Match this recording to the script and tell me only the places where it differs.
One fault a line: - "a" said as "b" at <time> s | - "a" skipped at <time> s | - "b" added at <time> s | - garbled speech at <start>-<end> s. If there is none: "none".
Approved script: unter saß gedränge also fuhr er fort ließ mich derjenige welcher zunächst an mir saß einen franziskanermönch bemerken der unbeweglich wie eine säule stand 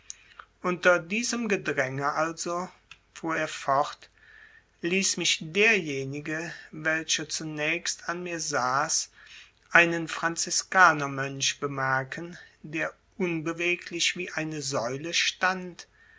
- "saß" said as "diesem" at 1.0 s